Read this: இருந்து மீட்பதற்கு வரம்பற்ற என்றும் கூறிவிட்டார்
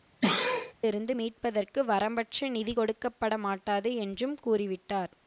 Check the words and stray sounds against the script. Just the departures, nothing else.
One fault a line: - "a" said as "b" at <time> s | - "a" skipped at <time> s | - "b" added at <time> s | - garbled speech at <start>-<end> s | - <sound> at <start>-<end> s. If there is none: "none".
- sneeze at 0.2-0.7 s
- "நிதி கொடுக்கப்படமாட்டாது" added at 2.5 s